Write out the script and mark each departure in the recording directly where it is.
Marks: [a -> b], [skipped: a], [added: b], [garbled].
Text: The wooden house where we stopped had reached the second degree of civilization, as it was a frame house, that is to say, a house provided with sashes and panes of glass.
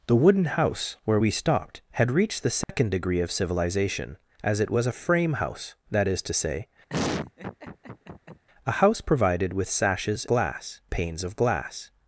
The wooden house where we stopped had reached the second degree of civilization, as it was a frame house, that is to say, a house provided with sashes [and -> glass] panes of glass.